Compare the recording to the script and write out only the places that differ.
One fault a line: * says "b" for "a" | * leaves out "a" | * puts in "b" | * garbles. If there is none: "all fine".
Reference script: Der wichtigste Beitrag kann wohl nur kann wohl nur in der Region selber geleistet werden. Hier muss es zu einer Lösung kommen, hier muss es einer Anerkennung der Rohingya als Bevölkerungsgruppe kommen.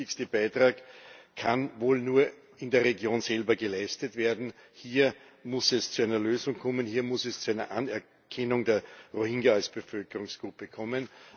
* leaves out "kann wohl nur"
* puts in "zu"